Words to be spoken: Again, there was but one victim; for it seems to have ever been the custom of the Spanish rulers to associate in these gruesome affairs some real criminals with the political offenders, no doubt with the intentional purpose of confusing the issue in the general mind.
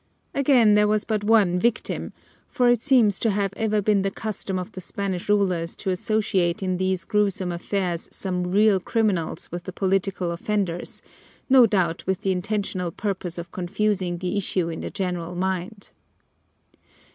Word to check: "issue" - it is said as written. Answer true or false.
true